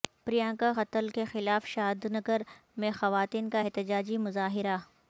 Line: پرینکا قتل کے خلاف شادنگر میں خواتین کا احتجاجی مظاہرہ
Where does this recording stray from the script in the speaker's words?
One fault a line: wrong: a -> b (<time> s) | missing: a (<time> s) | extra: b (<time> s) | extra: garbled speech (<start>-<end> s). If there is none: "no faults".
no faults